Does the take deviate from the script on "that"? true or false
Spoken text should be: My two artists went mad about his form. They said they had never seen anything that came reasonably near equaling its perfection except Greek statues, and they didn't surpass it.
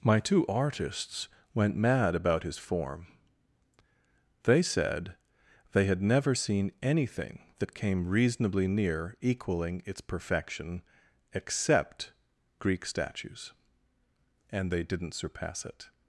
false